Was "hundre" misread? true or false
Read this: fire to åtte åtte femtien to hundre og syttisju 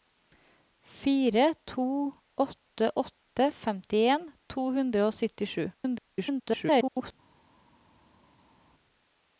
false